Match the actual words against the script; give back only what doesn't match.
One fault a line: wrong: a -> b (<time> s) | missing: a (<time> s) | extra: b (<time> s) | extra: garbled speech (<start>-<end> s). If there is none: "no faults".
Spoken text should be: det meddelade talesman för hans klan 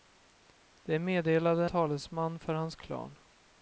no faults